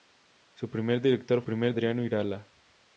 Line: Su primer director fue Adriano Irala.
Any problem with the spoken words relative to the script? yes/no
yes